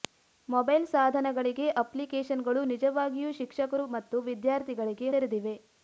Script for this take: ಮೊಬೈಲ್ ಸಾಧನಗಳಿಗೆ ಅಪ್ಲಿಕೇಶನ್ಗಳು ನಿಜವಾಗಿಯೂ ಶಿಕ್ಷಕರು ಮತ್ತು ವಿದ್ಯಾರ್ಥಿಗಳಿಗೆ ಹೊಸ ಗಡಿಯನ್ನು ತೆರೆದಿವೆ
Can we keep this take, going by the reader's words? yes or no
no